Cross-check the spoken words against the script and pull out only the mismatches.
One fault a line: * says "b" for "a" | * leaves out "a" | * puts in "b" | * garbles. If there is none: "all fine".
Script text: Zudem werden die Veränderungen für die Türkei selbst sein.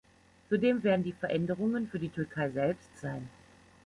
all fine